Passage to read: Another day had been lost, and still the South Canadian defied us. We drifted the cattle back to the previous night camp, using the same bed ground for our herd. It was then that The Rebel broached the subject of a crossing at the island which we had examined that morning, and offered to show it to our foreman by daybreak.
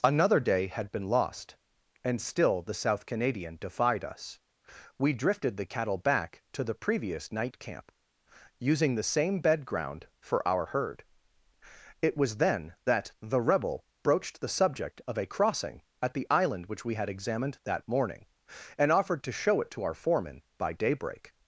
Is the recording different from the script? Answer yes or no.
no